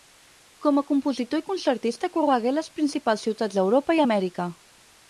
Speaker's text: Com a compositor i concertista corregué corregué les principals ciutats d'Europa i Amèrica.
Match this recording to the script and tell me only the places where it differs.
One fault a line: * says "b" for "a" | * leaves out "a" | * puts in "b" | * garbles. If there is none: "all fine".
* leaves out "corregué"